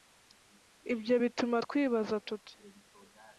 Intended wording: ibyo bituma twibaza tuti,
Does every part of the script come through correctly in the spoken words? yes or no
yes